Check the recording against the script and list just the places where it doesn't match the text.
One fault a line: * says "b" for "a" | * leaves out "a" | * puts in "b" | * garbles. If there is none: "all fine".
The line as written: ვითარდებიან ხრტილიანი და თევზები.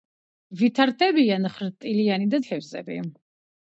all fine